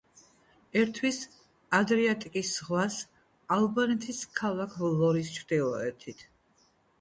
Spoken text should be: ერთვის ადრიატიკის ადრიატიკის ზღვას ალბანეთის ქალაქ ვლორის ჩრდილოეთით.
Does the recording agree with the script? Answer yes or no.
no